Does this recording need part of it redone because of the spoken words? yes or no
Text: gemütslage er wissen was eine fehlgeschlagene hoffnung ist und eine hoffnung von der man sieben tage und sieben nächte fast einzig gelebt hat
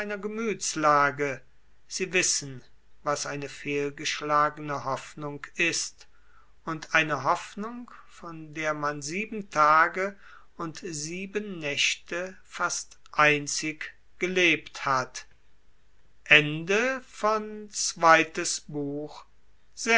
yes